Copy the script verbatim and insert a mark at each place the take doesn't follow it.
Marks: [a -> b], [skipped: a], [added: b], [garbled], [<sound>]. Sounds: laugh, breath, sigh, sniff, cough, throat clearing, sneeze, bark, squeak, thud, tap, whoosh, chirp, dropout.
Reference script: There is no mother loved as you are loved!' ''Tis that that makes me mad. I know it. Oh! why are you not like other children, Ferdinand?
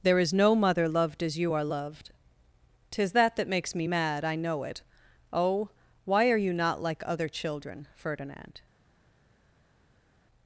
There is no mother loved as you are loved!' ''Tis that that makes me mad. I know it. Oh! why are you not like other children, Ferdinand?